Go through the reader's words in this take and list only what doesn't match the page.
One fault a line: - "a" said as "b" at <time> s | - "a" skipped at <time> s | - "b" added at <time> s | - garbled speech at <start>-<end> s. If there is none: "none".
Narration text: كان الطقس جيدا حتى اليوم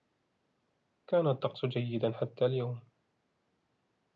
none